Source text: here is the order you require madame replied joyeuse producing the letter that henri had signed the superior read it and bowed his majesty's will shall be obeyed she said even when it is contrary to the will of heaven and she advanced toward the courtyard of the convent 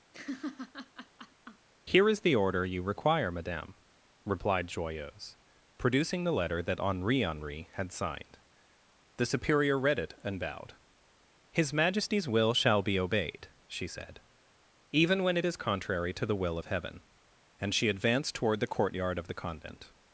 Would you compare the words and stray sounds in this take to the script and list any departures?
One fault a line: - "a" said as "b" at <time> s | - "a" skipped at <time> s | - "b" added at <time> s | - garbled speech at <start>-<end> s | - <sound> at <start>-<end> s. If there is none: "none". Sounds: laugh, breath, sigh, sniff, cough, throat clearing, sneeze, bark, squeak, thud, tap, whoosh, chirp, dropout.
- laugh at 0.1-1.7 s
- "henri" added at 7.2 s